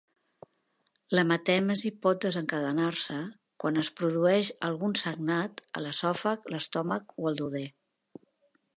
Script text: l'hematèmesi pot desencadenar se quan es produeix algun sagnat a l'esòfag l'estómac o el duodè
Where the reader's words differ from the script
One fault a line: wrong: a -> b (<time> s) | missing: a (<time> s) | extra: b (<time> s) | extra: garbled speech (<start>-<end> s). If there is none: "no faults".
no faults